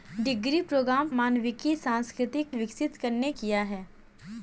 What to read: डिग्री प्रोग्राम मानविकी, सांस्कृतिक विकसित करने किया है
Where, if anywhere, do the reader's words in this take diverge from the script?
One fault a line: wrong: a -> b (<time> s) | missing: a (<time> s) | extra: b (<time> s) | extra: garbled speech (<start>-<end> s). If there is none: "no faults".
no faults